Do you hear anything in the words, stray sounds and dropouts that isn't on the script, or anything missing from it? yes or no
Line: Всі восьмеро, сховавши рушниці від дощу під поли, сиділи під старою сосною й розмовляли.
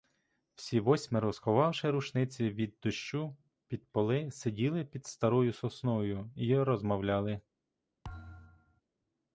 yes